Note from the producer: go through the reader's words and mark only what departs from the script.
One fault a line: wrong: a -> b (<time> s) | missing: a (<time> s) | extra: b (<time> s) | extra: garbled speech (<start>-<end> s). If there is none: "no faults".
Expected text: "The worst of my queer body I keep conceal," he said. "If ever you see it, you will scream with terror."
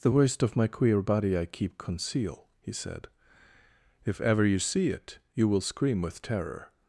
no faults